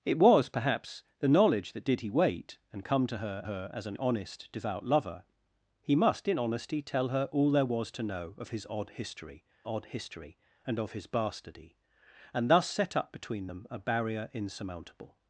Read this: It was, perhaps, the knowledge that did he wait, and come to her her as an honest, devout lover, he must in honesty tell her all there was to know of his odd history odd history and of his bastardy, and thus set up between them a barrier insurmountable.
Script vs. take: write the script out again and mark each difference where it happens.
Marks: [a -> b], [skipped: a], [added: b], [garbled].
It was, perhaps, the knowledge that did he wait, and come to her her as an honest, devout lover, he must in honesty tell her all there was to know of his odd history odd history and of his bastardy, and thus set up between them a barrier insurmountable.